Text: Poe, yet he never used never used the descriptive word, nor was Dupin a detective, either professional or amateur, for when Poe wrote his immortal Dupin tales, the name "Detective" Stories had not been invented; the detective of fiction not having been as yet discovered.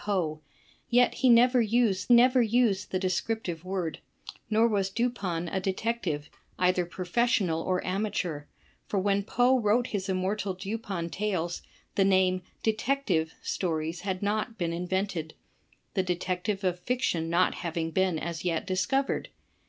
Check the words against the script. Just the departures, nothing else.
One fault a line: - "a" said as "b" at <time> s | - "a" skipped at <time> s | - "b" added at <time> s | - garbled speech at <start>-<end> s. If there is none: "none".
none